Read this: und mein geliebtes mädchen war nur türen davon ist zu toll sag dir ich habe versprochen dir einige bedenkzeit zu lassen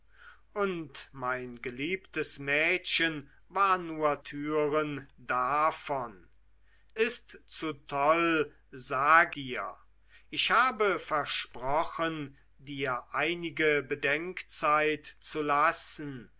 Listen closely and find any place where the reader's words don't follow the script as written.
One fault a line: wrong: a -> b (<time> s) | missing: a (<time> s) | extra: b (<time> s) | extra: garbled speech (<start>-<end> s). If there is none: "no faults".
no faults